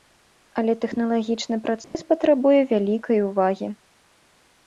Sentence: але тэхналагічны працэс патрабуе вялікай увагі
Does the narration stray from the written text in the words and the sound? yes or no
yes